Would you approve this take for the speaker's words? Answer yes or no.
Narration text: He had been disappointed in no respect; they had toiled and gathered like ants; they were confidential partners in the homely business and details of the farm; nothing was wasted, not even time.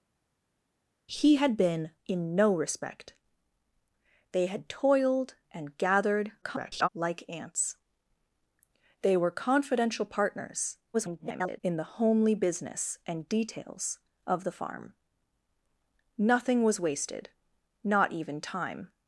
no